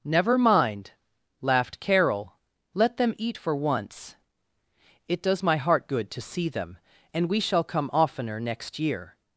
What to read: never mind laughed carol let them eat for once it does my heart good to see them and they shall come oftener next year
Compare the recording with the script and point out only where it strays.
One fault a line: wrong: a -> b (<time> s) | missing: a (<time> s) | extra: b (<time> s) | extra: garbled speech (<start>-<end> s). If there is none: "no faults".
wrong: they -> we (7.3 s)